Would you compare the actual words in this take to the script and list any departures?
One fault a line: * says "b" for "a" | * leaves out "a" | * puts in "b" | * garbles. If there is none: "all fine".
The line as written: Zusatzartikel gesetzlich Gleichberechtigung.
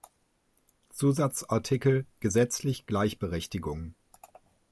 all fine